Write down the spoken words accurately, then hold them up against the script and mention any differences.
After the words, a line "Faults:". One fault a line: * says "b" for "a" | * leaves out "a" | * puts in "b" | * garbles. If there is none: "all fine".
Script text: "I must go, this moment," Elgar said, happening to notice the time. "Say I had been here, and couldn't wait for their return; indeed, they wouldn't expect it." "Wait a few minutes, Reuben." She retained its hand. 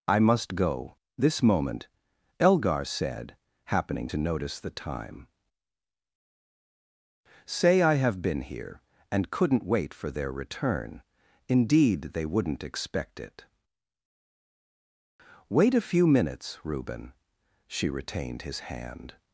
"I must go, this moment," Elgar said, happening to notice the time. "Say I have been here, and couldn't wait for their return; indeed, they wouldn't expect it." "Wait a few minutes, Reuben." She retained his hand.
Faults:
* says "have" for "had"
* says "his" for "its"